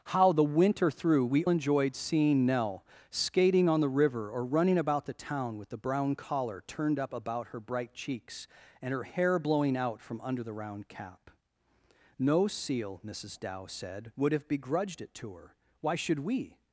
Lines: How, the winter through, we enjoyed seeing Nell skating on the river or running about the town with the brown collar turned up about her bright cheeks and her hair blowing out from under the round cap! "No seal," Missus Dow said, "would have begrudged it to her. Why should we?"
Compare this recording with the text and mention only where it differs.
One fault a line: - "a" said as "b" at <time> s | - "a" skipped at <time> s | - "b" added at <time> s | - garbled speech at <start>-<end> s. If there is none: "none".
none